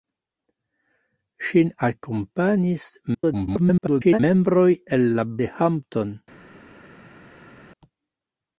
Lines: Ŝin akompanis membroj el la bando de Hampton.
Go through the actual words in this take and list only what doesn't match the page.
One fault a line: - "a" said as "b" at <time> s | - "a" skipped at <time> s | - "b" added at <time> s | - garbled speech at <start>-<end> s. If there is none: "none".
- garbled speech at 3.1-4.2 s
- "bando" skipped at 5.3 s